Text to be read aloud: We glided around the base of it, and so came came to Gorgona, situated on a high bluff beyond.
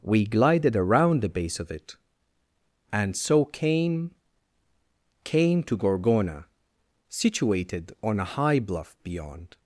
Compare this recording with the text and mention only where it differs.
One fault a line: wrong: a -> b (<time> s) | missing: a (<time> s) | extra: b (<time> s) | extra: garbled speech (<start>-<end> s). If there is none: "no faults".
no faults